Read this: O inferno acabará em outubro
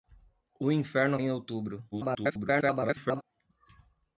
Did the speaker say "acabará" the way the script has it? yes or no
no